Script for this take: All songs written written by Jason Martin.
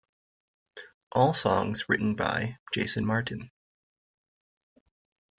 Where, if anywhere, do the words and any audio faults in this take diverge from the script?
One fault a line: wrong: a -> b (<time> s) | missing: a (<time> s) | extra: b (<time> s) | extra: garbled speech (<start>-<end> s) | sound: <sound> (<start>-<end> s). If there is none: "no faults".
missing: written (2.2 s)